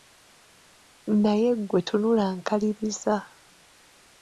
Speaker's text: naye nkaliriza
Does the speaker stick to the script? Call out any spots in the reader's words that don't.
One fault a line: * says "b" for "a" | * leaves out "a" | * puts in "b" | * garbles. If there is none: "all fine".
* puts in "ggwe tunula"